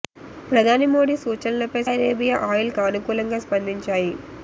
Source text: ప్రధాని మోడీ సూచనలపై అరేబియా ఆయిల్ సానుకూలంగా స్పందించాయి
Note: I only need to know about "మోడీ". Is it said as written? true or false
true